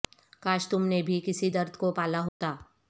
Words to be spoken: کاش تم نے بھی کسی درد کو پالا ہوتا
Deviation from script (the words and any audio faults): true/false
true